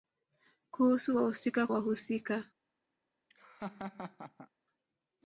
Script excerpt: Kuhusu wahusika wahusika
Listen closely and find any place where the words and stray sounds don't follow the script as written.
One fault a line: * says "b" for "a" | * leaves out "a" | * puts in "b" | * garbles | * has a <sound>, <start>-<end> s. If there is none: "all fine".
* has a laugh, 3.3-4.5 s